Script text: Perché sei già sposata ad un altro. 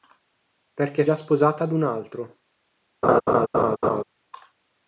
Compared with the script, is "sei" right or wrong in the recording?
wrong